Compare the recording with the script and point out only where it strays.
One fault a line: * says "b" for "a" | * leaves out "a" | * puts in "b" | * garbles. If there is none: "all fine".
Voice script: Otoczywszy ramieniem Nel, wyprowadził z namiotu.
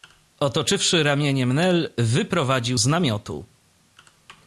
all fine